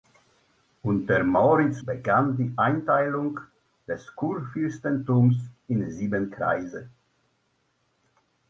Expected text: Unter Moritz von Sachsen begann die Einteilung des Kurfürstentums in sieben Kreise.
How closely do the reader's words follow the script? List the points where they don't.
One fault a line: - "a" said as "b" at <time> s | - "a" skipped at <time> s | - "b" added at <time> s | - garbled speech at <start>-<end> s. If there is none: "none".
- "von Sachsen" skipped at 1.8 s